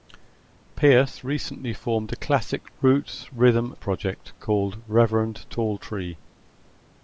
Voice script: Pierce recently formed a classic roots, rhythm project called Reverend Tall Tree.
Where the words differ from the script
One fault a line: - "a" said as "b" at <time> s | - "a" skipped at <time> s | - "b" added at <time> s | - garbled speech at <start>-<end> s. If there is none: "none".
none